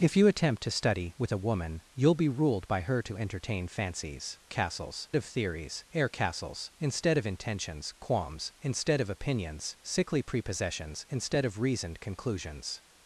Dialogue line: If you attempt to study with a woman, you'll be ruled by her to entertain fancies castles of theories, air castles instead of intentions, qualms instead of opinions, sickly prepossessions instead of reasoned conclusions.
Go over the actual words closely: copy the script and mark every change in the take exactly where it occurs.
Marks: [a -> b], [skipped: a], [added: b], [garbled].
If you attempt to study with a woman, you'll be ruled by her to entertain fancies castles of theories, air castles instead of intentions, qualms instead of opinions, sickly prepossessions instead of reasoned conclusions.